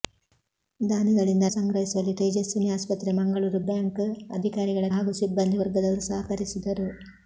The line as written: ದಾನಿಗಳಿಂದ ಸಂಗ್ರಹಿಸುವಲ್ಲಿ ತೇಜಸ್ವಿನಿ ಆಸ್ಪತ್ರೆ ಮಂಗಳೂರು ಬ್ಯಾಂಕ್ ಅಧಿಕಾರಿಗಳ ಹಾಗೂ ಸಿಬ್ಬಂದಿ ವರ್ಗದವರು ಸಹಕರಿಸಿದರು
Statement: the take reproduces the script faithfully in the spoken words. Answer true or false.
true